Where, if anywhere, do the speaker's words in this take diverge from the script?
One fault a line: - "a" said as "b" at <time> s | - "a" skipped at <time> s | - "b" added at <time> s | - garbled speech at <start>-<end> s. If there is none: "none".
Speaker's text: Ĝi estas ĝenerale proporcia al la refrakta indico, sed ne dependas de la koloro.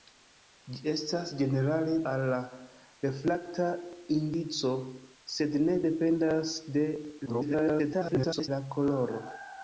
- "proporcia" skipped at 2.0 s
- garbled speech at 7.3-8.5 s